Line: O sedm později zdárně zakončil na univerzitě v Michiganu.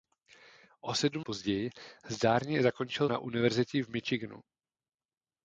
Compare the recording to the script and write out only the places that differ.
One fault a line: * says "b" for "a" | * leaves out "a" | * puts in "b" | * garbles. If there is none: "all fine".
all fine